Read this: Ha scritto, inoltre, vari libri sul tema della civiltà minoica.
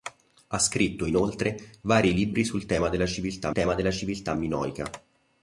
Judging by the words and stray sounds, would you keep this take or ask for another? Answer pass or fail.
fail